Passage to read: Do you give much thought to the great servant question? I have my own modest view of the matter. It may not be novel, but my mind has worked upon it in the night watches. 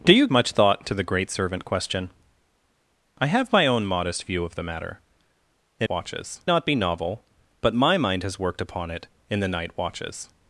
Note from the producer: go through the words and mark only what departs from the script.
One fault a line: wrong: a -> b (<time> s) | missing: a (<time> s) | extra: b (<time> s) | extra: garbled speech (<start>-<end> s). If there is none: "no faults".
missing: give (0.3 s)
wrong: may -> watches (5.9 s)